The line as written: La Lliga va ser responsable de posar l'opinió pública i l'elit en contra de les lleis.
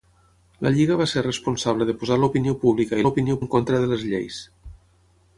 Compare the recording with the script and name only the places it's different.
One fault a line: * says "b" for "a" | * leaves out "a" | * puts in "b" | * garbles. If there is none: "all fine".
* says "l'opinió" for "l'elit"